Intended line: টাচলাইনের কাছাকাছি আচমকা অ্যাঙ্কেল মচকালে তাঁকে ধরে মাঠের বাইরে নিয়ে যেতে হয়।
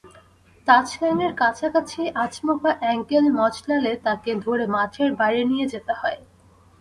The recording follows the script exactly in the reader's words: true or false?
true